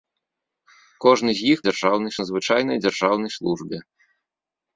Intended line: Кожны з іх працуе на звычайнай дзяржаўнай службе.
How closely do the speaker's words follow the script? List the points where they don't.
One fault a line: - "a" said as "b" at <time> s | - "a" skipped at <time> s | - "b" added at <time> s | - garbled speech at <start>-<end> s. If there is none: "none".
- "працуе" said as "дзяржаўнай" at 1.7 s